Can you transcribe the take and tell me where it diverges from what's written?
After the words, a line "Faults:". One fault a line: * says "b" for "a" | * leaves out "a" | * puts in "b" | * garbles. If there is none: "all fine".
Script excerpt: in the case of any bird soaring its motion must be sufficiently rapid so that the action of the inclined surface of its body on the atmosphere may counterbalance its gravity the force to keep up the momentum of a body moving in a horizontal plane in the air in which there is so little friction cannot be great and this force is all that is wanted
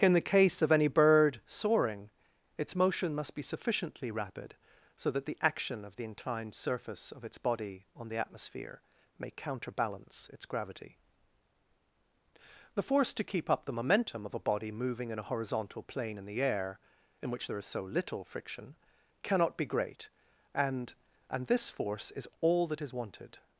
in the case of any bird soaring its motion must be sufficiently rapid so that the action of the inclined surface of its body on the atmosphere may counterbalance its gravity the force to keep up the momentum of a body moving in a horizontal plane in the air in which there is so little friction cannot be great and and this force is all that is wanted
Faults:
* puts in "and"